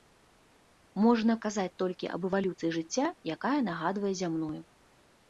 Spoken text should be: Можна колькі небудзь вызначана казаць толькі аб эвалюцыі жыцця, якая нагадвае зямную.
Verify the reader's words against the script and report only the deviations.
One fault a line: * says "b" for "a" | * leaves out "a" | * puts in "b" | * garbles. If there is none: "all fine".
* leaves out "колькі небудзь вызначана"